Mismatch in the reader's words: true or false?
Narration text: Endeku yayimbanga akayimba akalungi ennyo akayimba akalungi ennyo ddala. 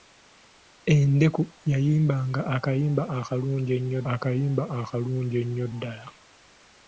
false